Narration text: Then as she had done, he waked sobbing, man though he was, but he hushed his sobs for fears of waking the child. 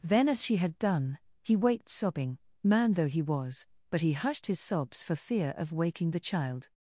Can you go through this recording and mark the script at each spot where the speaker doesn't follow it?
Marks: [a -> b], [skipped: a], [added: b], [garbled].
Then as she had done, he waked sobbing, man though he was, but he hushed his sobs for [fears -> fear] of waking the child.